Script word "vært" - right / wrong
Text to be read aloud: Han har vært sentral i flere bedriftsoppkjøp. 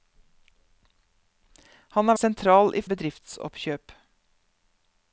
wrong